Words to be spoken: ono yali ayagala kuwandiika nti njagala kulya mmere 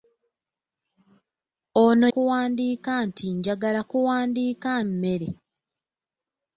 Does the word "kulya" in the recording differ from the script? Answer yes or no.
yes